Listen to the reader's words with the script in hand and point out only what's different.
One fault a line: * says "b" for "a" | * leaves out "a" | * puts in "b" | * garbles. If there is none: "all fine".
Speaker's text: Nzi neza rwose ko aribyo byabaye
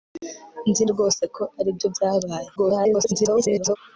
* leaves out "neza"
* garbles